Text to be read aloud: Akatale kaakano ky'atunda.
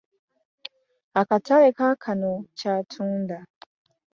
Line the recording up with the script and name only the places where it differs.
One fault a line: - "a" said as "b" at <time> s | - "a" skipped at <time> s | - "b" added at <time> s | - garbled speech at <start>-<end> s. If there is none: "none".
none